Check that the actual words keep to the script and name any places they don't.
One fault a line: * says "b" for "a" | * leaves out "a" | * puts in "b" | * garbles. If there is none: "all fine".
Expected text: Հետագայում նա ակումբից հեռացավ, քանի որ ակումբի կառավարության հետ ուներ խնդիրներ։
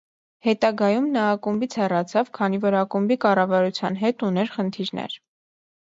all fine